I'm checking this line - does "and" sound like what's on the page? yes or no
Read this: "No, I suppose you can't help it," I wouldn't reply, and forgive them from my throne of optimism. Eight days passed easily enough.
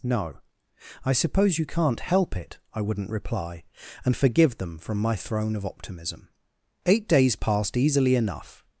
yes